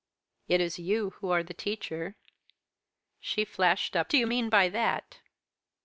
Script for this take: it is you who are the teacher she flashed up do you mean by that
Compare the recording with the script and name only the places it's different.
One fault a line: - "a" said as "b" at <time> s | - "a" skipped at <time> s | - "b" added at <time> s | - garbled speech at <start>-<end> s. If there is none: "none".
none